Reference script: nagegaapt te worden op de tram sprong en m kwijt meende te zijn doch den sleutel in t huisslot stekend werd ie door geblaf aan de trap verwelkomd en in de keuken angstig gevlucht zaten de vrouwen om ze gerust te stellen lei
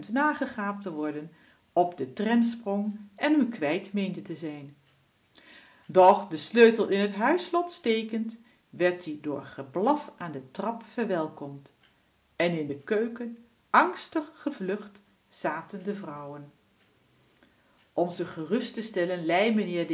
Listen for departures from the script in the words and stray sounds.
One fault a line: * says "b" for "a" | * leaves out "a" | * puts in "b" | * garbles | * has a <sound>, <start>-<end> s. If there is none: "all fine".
all fine